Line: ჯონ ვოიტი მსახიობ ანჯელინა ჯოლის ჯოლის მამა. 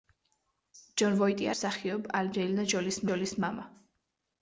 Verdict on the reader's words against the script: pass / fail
pass